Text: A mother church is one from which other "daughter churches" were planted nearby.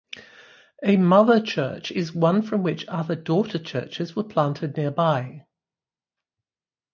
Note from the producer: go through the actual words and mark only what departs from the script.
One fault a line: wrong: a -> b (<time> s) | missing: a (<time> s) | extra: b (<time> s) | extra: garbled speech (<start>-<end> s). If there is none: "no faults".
no faults